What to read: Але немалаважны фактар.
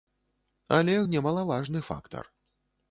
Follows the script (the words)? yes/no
yes